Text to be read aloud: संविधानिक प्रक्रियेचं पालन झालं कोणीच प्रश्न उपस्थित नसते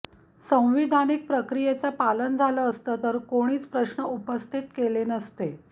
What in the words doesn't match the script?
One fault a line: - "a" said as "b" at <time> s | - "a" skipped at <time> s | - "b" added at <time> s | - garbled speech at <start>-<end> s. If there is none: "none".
- "असतं तर" added at 2.7 s
- "केले" added at 4.7 s